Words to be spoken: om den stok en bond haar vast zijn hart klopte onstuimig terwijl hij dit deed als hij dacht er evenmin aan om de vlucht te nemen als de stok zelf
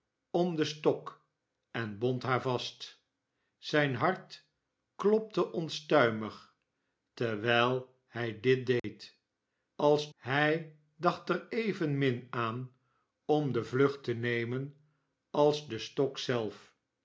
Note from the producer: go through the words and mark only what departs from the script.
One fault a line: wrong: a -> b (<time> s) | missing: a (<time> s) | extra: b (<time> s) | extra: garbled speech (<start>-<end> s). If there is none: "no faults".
no faults